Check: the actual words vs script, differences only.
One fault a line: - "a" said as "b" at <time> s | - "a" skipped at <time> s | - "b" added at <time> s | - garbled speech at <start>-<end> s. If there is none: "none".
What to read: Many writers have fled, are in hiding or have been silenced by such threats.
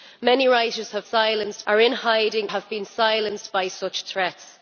- "fled" said as "silenced" at 1.0 s
- "or" skipped at 2.5 s